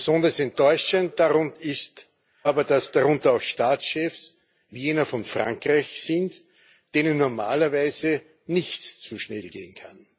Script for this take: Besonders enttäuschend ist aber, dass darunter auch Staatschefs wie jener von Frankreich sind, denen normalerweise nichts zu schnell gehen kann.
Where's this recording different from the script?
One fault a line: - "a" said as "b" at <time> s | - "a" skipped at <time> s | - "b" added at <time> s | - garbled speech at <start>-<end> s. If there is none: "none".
none